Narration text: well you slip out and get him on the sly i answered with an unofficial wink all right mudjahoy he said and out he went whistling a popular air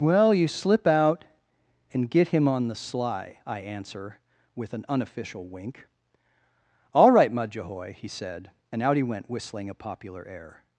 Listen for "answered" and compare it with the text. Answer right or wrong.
wrong